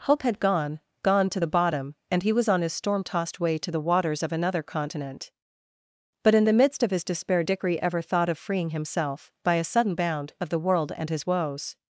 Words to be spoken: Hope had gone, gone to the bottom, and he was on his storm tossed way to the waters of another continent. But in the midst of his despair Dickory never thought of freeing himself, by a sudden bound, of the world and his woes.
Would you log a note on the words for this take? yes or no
yes